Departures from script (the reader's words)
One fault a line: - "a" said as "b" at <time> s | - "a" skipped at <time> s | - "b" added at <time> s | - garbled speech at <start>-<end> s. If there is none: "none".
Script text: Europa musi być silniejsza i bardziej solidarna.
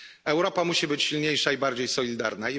none